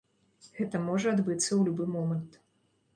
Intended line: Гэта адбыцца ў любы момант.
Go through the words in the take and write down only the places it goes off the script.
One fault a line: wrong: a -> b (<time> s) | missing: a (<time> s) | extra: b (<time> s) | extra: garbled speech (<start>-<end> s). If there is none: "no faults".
extra: можа (0.9 s)